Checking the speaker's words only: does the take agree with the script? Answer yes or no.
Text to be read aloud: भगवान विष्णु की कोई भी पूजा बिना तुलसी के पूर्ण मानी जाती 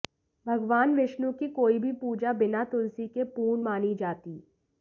yes